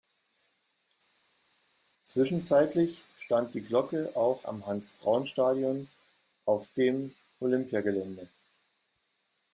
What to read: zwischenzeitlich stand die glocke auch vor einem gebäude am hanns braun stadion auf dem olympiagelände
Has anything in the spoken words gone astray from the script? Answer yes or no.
yes